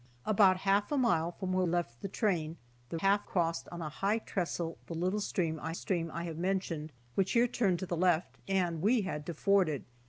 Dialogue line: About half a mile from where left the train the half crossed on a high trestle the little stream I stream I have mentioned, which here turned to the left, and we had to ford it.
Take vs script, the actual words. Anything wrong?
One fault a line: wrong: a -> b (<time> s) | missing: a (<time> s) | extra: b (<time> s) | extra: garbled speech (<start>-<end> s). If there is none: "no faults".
no faults